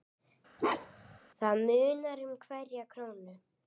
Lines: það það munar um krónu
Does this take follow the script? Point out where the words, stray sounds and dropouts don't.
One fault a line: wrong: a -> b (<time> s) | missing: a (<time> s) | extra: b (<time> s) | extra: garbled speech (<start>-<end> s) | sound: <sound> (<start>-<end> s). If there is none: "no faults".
sound: bark (0.6-1.2 s)
missing: það (1.6 s)
extra: hverja (2.5 s)